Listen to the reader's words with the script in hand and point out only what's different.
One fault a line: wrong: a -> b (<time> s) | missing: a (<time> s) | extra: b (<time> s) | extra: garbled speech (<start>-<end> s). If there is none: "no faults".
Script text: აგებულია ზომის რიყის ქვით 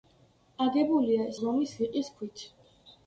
no faults